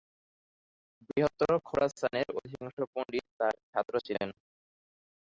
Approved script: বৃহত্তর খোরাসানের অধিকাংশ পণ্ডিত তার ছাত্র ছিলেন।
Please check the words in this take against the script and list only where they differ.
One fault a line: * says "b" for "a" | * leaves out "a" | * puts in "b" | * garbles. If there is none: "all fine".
all fine